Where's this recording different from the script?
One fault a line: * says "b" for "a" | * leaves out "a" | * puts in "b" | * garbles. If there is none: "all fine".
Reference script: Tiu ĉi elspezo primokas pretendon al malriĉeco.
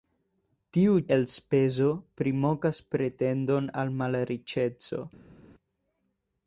* leaves out "ĉi"